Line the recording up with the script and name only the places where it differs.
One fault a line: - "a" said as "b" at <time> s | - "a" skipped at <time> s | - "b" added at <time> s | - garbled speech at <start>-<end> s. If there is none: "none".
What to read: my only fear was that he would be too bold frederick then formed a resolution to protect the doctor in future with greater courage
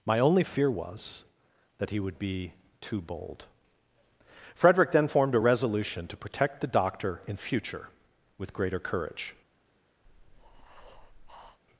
none